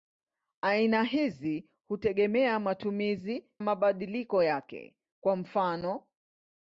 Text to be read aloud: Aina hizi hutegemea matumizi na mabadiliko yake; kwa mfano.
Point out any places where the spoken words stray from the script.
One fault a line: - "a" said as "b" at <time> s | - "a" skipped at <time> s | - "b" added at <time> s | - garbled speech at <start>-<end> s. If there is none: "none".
- "na" skipped at 3.5 s